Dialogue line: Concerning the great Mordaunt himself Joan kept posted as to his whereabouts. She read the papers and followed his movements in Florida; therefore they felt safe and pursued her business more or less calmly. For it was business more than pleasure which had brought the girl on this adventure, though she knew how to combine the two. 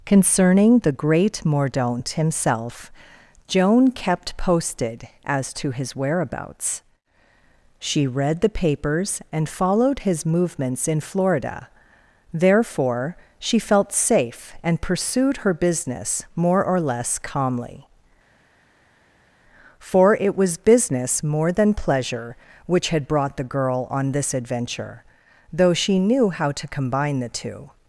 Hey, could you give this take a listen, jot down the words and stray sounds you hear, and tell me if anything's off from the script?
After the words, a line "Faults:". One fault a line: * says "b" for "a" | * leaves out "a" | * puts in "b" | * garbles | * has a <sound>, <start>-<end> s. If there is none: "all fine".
Concerning the great Mordaunt himself Joan kept posted as to his whereabouts. She read the papers and followed his movements in Florida; therefore she felt safe and pursued her business more or less calmly. For it was business more than pleasure which had brought the girl on this adventure, though she knew how to combine the two.
Faults:
* says "she" for "they"